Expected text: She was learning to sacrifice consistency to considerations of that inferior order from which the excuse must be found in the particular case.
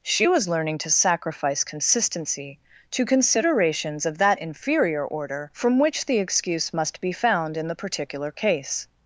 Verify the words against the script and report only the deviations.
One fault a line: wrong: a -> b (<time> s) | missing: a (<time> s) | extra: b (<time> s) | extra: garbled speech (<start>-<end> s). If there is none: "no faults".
no faults